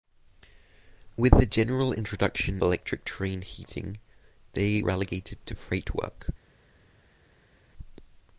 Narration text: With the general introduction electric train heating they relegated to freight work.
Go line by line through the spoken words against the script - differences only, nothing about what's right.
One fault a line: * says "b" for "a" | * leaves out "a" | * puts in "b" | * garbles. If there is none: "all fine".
all fine